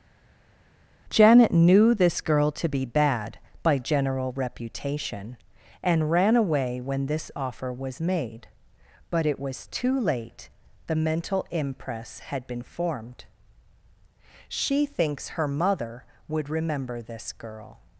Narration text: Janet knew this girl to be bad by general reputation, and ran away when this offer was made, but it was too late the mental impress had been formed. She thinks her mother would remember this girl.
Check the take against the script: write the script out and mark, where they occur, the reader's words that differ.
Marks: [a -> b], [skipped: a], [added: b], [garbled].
Janet knew this girl to be bad by general reputation, and ran away when this offer was made, but it was too late the mental impress had been formed. She thinks her mother would remember this girl.